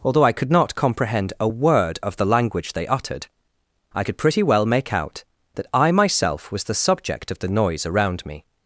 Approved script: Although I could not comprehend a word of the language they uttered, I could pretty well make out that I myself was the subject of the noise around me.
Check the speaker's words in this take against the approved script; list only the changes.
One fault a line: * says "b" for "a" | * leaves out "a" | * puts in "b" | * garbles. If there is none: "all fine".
all fine